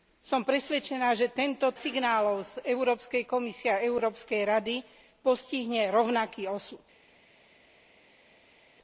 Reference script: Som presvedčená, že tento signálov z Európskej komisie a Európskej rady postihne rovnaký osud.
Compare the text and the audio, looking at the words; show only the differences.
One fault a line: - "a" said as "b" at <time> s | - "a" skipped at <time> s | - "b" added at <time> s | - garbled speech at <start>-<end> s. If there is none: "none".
none